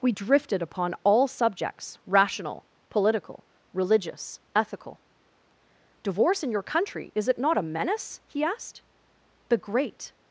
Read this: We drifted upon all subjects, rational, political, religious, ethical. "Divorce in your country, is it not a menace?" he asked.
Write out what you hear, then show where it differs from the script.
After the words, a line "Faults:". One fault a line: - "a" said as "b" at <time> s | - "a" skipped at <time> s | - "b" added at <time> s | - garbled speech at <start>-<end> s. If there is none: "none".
We drifted upon all subjects, rational, political, religious, ethical. "Divorce in your country, is it not a menace?" he asked. "The great
Faults:
- "The great" added at 9.5 s